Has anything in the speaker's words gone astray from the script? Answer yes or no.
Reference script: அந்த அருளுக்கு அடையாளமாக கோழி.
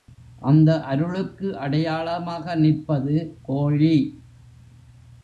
yes